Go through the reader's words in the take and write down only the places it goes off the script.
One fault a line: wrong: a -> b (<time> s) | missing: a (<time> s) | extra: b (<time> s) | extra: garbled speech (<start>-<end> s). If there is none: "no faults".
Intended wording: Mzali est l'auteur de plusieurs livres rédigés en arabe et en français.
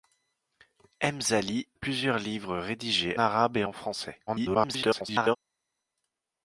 missing: est l'auteur de (1.7 s)
missing: en (3.2 s)
extra: garbled speech (4.3-5.4 s)